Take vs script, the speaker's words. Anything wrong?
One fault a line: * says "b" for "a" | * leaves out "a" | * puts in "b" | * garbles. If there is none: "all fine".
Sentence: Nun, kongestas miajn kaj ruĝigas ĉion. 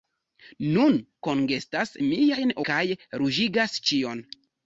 all fine